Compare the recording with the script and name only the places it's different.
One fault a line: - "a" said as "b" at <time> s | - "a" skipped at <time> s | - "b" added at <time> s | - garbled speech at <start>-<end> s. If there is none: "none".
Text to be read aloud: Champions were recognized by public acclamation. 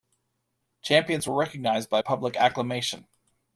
none